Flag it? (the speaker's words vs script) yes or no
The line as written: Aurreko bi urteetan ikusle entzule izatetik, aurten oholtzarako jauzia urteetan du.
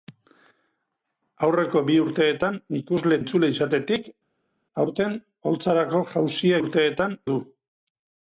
no